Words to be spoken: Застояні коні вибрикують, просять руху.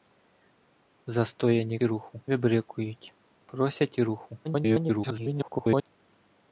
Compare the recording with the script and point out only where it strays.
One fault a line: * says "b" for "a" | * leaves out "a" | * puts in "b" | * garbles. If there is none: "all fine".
* says "руху" for "коні"
* garbles